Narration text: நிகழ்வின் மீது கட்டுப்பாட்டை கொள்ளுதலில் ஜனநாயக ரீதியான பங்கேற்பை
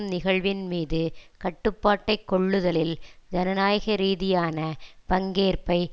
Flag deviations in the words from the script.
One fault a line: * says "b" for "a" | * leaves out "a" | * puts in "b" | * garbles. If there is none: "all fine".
all fine